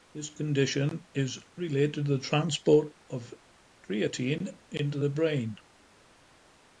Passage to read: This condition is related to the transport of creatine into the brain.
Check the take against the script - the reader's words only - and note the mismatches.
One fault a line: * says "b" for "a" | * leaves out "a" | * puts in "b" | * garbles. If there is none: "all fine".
all fine